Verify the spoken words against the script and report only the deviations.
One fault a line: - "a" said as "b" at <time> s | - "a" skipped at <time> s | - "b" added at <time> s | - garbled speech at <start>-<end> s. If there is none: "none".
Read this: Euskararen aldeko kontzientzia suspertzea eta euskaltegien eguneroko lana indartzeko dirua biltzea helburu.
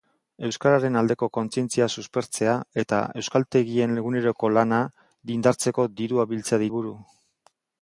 none